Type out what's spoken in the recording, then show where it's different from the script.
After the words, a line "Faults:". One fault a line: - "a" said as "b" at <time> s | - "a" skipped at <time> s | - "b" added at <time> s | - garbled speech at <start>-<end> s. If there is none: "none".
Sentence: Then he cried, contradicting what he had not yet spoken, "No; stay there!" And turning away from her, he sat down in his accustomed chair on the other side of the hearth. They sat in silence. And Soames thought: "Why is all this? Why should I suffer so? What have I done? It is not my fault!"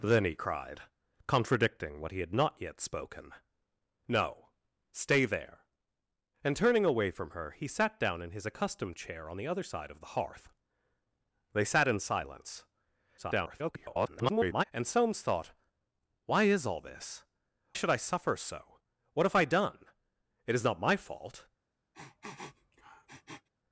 Then he cried, contradicting what he had not yet spoken, "No; stay there!" And turning away from her, he sat down in his accustomed chair on the other side of the hearth. They sat in silence. [garbled] And Soames thought: "Why is all this? Should I suffer so? What have I done? It is not my fault!"
Faults:
- garbled speech at 13.2-14.6 s
- "Why" skipped at 17.2 s